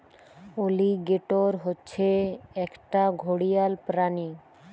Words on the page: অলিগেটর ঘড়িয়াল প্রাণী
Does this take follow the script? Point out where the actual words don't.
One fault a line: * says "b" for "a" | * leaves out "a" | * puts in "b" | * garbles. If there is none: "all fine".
* puts in "হচ্ছে একটা"